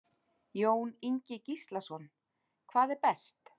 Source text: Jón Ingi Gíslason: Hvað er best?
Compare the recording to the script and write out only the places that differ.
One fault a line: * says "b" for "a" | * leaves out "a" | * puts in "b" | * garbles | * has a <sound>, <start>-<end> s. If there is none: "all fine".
all fine